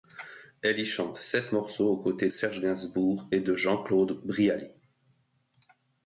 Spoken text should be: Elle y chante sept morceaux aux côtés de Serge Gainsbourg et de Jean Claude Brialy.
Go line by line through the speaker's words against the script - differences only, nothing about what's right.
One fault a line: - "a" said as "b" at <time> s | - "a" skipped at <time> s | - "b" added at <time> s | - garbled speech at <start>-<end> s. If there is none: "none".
- "de" skipped at 2.3 s